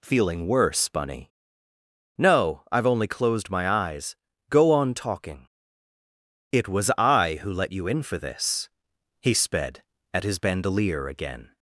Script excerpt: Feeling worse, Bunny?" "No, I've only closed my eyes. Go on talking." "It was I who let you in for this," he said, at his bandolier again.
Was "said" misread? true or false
true